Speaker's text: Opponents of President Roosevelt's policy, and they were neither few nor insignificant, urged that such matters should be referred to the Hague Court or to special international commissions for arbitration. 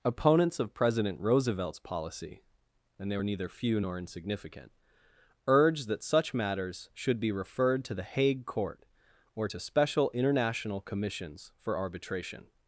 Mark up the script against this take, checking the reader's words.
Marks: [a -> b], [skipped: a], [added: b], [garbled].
Opponents of President Roosevelt's policy, and they were neither few nor insignificant, urged that such matters should be referred to the Hague Court or to special international commissions for arbitration.